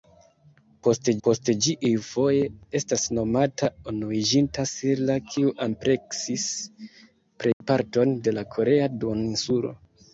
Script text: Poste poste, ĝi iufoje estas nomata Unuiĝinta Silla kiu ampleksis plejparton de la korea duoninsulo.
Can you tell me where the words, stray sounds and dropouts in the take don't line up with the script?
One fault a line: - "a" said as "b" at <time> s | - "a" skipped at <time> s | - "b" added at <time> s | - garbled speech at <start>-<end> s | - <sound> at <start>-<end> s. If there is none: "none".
- dropout at 7.5-7.6 s